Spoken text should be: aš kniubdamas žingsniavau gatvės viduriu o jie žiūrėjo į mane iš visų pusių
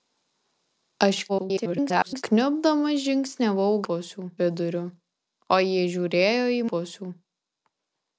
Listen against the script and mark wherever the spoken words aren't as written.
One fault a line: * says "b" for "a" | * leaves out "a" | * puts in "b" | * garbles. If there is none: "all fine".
* garbles
* says "pusių" for "gatvės"
* leaves out "mane iš visų"